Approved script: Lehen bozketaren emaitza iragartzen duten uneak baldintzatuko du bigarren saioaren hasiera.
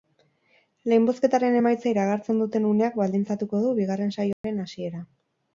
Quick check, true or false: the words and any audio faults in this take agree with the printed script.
false